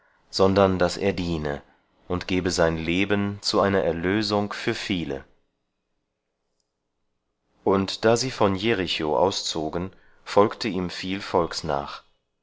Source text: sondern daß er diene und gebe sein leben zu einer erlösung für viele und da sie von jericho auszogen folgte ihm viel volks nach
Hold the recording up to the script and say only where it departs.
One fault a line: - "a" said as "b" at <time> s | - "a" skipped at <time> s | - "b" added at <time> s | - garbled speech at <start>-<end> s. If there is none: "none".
none